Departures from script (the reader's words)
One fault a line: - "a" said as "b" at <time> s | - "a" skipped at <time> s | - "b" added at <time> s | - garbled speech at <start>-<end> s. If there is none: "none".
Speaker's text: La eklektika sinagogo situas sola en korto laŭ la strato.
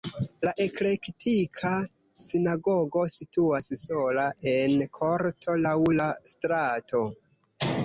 none